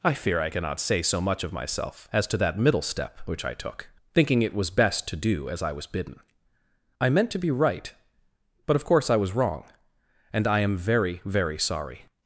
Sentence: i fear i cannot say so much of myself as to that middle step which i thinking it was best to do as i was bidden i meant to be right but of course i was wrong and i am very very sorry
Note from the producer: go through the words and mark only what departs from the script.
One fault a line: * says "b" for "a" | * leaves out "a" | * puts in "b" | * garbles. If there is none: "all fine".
* puts in "took"